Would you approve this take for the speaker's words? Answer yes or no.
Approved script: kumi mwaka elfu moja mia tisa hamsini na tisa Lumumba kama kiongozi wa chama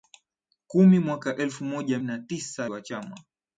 no